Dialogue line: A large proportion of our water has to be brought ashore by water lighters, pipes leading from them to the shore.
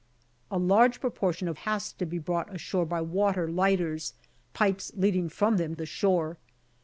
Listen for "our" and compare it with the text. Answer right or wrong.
wrong